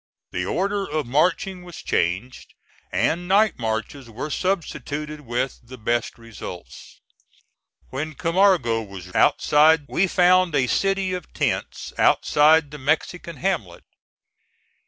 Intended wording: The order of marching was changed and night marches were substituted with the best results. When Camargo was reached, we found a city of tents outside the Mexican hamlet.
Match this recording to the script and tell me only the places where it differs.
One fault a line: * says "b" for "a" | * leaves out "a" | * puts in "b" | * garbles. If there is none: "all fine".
* says "outside" for "reached"